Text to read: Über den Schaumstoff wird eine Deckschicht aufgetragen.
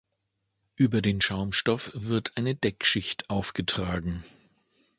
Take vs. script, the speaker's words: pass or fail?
pass